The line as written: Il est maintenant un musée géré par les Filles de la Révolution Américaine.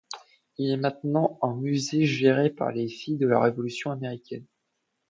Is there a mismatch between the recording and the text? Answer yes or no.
no